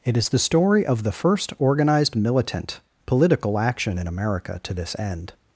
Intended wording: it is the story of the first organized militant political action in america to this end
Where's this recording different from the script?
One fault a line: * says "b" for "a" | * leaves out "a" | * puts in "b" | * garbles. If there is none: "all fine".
all fine